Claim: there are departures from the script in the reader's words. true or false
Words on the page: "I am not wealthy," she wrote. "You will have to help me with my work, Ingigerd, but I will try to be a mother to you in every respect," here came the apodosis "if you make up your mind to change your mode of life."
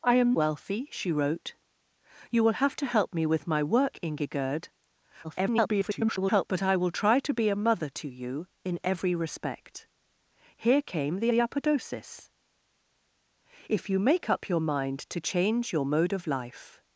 true